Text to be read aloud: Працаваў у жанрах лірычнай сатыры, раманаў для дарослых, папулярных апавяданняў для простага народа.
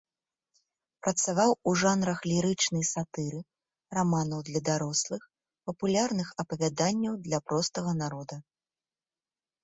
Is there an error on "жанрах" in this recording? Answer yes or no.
no